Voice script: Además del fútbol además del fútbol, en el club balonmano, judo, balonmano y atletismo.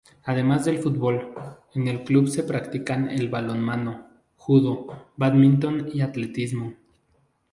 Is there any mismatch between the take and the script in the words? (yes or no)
yes